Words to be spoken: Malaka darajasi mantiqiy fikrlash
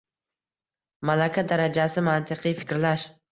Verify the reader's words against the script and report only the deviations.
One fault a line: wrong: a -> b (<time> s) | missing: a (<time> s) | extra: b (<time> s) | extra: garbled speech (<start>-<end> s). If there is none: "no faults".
no faults